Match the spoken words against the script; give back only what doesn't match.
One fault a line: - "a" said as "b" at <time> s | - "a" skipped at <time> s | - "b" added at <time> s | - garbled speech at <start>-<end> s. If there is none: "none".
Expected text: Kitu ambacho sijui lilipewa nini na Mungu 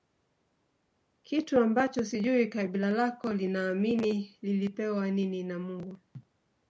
- "kabila lako linaamini" added at 2.5 s